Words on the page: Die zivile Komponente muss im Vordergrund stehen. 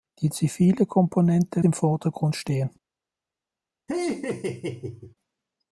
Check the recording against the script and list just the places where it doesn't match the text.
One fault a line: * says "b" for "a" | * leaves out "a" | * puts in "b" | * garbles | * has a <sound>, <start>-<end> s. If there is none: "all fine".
* leaves out "muss"
* has a laugh, 3.9-5.1 s